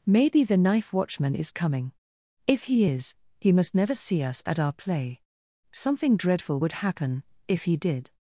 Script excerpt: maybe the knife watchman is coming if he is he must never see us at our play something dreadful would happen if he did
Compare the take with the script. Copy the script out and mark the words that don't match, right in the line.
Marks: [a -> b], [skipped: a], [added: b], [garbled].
maybe the knife watchman is coming if he is he must never see us at our play something dreadful would happen if he did